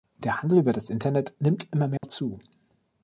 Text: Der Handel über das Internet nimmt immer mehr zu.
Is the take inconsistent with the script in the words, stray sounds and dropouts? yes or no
yes